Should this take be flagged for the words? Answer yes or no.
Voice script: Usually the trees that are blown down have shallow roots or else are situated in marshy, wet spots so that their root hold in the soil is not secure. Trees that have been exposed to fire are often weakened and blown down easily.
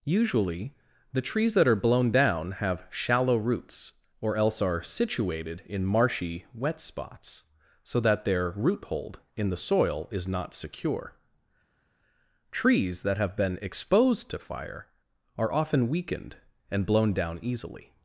no